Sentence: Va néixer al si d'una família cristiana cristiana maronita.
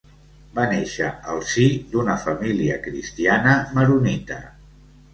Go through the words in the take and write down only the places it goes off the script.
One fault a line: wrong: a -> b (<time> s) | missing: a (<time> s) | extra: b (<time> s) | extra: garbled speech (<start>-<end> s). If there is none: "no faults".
missing: cristiana (3.6 s)